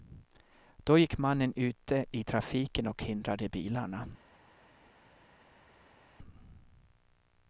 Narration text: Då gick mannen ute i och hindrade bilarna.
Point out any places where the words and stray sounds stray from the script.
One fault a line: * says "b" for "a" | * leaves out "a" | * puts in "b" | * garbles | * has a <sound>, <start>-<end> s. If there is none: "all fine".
* puts in "trafiken"